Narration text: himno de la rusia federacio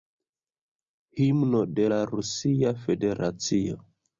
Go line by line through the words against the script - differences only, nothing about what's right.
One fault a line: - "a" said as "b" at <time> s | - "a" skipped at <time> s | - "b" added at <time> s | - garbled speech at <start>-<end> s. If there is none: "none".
none